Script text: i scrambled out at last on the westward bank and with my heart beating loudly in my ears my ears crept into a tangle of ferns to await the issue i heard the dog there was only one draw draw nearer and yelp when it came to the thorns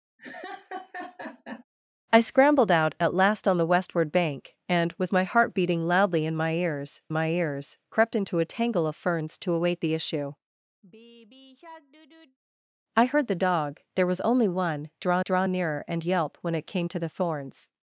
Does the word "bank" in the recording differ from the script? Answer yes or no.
no